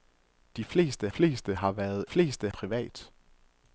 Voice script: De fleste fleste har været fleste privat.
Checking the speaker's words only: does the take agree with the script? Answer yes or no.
yes